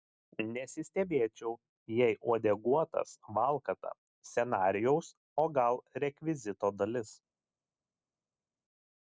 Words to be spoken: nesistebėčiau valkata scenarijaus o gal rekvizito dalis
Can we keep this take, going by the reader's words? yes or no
no